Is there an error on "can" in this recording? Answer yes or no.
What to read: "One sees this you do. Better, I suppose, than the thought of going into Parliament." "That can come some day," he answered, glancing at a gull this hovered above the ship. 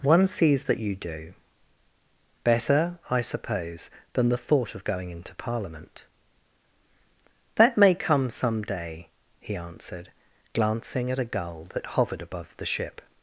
yes